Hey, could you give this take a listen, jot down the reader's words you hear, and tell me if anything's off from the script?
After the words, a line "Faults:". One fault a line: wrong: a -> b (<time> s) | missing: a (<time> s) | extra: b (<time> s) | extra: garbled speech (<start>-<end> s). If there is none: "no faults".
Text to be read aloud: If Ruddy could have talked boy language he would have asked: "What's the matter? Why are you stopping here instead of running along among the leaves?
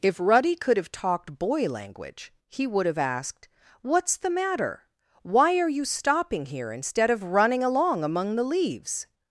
If Ruddy could have talked boy language he would have asked: "What's the matter? Why are you stopping here instead of running along among the leaves?
Faults:
no faults